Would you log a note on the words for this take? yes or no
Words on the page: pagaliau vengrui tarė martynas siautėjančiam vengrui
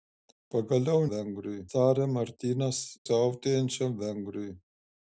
no